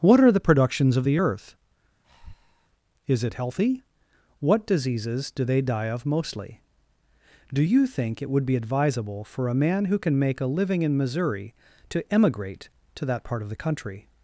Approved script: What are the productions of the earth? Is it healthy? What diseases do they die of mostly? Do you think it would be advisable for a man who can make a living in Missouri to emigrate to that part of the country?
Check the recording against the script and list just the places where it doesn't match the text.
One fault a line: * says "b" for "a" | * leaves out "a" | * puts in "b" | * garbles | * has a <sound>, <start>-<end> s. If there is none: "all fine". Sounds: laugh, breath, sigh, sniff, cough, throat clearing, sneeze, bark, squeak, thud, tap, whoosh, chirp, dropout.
* has a breath, 2.0-2.7 s